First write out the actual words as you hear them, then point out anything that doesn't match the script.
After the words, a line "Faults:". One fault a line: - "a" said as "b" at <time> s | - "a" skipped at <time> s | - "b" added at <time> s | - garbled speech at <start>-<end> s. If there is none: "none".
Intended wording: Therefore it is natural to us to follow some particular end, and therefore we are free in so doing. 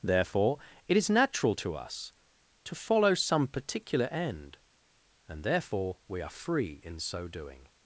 Therefore it is natural to us to follow some particular end, and therefore we are free in so doing.
Faults:
none